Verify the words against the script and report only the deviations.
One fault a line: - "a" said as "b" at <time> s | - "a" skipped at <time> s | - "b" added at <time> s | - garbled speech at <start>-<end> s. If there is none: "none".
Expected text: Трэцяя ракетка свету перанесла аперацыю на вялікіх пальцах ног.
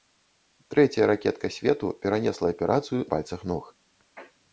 - "на вялікіх" skipped at 3.0 s